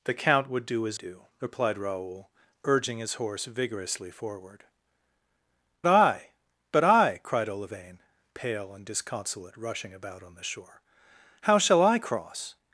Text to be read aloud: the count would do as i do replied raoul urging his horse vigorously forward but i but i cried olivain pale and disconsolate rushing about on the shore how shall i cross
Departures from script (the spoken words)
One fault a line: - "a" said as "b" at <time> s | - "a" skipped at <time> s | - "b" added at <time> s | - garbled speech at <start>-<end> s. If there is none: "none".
- "i" skipped at 1.0 s
- "but" skipped at 4.6 s